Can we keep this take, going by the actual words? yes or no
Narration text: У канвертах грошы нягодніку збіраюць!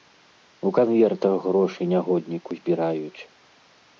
yes